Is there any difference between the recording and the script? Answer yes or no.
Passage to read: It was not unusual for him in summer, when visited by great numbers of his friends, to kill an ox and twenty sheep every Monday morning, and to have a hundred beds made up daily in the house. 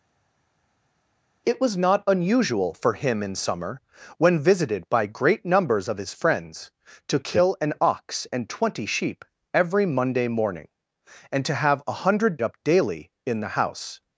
yes